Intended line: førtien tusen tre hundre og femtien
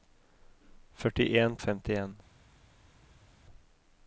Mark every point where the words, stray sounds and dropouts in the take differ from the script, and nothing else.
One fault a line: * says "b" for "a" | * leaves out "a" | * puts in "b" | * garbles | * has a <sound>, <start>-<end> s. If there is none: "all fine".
* leaves out "tusen tre hundre"